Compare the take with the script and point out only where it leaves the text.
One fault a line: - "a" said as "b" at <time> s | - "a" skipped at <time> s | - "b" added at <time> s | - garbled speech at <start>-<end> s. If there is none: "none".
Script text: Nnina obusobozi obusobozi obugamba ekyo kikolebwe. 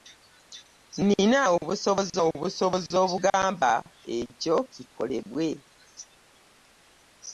none